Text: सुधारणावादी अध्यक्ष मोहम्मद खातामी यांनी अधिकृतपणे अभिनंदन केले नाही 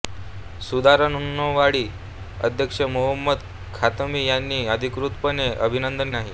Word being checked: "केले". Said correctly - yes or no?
no